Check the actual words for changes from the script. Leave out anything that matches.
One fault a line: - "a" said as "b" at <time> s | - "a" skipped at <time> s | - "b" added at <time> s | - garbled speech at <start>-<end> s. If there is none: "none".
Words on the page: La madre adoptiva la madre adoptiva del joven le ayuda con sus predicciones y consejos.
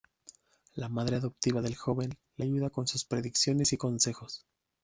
- "la madre adoptiva" skipped at 1.6 s